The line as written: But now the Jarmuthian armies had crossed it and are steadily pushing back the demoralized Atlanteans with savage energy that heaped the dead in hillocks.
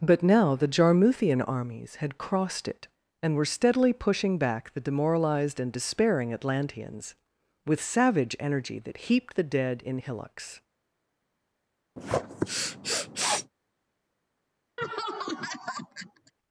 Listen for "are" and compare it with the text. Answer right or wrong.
wrong